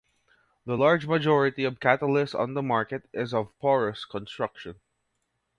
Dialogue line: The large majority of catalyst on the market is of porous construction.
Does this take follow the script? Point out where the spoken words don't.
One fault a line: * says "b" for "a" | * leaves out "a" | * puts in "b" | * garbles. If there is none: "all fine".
all fine